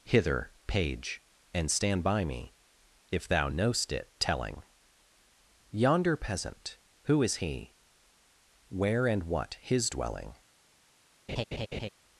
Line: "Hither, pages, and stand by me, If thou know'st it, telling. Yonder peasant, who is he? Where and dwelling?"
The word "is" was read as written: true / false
true